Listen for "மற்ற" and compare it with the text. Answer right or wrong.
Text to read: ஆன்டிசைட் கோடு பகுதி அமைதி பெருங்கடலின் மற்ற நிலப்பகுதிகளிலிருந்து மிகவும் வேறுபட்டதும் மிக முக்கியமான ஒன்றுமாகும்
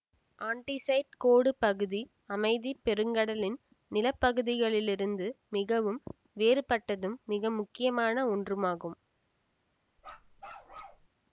wrong